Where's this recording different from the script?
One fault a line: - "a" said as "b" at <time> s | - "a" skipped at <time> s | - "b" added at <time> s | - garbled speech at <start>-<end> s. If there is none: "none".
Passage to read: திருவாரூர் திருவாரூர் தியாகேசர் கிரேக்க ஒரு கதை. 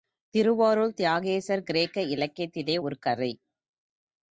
- "திருவாரூர்" skipped at 0.9 s
- "இலக்கியத்திலே" added at 2.1 s